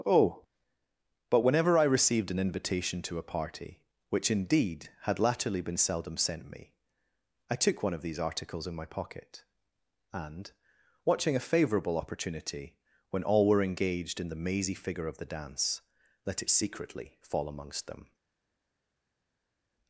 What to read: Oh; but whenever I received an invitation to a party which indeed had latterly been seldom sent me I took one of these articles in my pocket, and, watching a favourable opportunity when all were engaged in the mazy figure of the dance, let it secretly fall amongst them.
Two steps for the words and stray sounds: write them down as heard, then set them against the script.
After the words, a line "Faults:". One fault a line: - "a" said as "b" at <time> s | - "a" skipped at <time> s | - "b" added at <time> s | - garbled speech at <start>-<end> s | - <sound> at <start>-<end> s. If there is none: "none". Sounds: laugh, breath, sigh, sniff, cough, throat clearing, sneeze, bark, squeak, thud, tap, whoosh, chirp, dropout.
Oh; but whenever I received an invitation to a party which indeed had latterly been seldom sent me I took one of these articles in my pocket, and, watching a favourable opportunity when all were engaged in the mazy figure of the dance, let it secretly fall amongst them.
Faults:
none